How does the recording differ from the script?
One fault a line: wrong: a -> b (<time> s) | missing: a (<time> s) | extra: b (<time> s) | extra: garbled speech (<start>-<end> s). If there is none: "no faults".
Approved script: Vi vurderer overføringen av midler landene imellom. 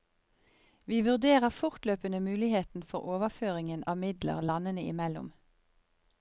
extra: fortløpende muligheten for (1.5 s)